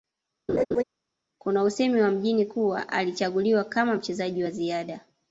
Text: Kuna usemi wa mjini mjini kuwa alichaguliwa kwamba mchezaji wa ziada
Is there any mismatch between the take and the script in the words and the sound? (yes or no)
yes